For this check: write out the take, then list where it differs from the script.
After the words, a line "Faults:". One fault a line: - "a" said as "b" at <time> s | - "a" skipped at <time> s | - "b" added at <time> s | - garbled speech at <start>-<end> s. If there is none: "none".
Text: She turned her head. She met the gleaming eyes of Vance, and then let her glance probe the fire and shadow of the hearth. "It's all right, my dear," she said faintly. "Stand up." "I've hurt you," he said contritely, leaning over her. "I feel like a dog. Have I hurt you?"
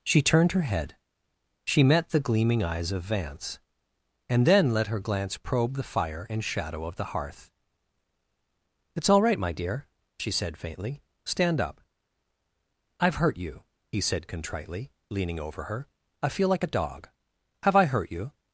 She turned her head. She met the gleaming eyes of Vance, and then let her glance probe the fire and shadow of the hearth. "It's all right, my dear," she said faintly. "Stand up." "I've hurt you," he said contritely, leaning over her. "I feel like a dog. Have I hurt you?"
Faults:
none